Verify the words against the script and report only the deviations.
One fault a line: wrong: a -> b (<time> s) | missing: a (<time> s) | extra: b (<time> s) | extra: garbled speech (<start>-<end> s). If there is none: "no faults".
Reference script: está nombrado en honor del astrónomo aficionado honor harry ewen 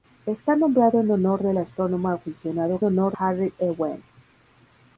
no faults